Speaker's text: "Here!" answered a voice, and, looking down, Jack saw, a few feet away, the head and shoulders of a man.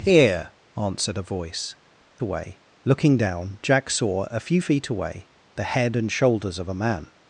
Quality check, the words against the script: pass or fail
fail